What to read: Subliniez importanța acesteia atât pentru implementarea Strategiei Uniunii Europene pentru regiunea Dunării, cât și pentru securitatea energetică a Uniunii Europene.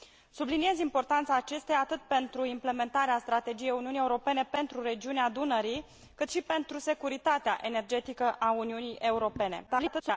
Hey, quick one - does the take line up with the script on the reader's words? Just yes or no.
no